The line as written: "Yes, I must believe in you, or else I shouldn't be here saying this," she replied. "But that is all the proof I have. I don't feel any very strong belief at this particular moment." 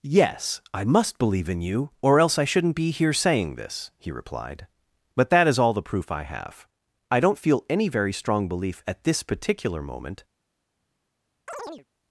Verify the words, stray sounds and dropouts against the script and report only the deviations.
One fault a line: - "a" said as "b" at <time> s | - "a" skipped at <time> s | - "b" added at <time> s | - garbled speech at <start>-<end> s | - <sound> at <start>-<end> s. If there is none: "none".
- "she" said as "he" at 4.0 s
- chirp at 11.5-11.9 s